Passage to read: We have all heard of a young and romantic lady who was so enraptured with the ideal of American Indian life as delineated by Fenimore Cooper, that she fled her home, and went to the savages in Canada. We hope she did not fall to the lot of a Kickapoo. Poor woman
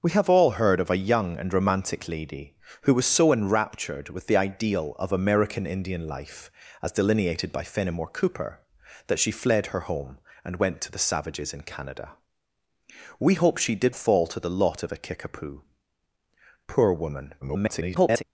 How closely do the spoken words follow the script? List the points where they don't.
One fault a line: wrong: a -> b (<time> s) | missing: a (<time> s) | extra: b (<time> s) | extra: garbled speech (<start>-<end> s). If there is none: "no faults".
missing: not (13.9 s)
extra: garbled speech (17.4-18.2 s)